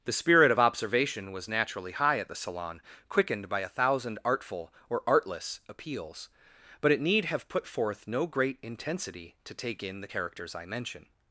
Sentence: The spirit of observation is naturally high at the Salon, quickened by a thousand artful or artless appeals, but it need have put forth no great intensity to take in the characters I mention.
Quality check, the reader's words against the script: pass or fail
fail